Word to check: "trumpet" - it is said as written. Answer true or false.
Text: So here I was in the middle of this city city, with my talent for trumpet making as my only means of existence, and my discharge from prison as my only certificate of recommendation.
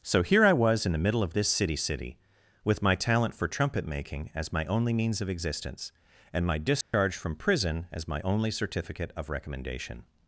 true